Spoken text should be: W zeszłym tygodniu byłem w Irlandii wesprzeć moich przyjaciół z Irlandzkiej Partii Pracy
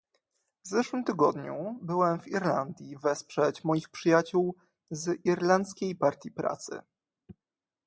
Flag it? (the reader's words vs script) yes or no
no